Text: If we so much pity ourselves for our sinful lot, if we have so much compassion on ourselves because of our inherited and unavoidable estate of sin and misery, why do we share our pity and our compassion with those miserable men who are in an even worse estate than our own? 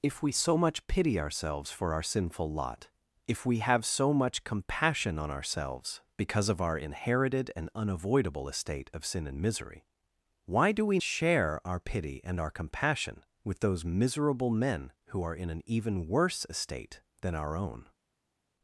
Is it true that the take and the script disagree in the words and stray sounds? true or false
false